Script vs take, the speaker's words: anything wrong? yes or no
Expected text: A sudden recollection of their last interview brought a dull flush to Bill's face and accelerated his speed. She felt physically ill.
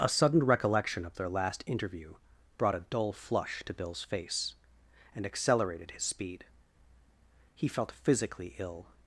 yes